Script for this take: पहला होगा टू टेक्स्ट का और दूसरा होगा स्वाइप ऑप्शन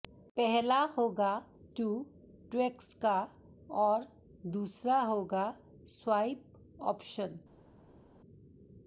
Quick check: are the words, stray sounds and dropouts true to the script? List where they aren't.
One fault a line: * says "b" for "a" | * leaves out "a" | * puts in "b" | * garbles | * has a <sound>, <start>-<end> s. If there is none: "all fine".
all fine